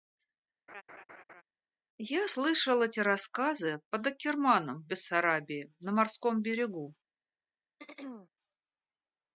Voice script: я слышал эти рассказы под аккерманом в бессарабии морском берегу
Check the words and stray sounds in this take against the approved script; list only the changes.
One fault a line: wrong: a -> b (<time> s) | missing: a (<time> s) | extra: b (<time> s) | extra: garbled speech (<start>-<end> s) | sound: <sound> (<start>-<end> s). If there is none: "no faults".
sound: laugh (0.7-1.4 s)
extra: на (5.8 s)
sound: throat clearing (7.8-8.3 s)